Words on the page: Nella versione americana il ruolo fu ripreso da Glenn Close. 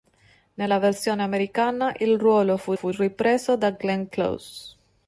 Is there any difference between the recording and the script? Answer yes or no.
yes